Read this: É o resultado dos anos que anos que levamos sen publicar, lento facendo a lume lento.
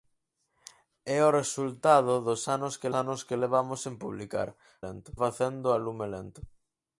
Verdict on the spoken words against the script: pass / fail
pass